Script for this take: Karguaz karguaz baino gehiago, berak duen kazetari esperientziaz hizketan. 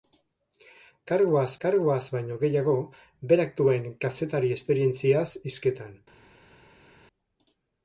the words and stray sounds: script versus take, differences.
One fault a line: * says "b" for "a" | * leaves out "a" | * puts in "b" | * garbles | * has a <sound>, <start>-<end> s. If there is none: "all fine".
all fine